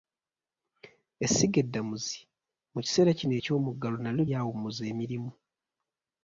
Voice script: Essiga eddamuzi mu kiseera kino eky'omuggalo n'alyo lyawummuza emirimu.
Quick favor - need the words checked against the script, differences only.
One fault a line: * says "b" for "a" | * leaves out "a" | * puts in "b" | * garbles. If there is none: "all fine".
all fine